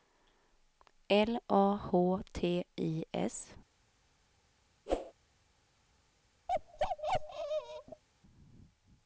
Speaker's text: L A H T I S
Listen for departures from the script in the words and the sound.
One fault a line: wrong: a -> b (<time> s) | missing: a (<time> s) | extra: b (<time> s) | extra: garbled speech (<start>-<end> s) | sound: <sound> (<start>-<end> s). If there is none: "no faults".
sound: whoosh (4.9-5.1 s)
sound: bark (6.5-8.0 s)